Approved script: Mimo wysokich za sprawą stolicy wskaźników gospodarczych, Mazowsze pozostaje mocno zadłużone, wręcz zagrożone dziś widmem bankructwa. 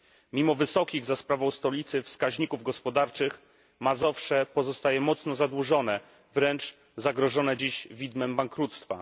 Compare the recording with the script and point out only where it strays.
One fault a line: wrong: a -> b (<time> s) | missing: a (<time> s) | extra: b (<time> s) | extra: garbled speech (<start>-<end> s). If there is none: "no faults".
no faults